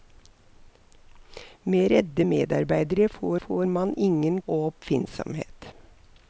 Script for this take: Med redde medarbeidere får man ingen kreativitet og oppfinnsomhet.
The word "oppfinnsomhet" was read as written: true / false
true